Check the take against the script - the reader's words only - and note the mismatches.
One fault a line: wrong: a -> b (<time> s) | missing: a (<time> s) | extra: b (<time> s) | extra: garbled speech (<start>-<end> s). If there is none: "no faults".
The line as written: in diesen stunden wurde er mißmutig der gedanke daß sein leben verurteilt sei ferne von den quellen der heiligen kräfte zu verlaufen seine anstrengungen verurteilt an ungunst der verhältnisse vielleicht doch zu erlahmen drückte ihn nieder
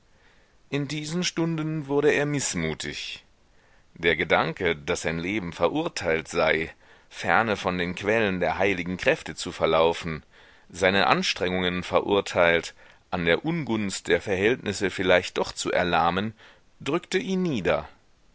extra: der (13.2 s)